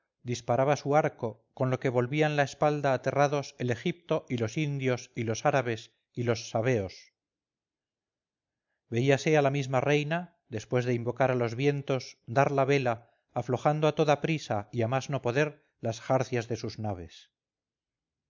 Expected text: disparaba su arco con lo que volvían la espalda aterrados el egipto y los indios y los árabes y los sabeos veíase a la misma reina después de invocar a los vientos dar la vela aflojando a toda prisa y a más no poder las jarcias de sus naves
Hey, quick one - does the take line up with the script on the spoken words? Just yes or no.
yes